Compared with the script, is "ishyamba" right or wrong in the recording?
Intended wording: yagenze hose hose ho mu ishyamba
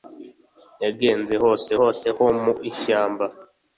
right